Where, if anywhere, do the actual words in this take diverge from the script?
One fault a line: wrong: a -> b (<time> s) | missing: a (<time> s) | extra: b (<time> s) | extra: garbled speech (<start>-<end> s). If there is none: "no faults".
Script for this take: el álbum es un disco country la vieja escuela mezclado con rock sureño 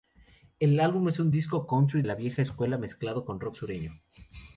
no faults